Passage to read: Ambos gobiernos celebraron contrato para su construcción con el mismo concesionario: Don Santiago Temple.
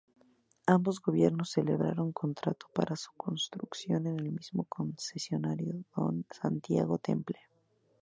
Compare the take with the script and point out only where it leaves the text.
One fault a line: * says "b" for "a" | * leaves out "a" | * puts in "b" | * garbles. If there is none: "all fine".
all fine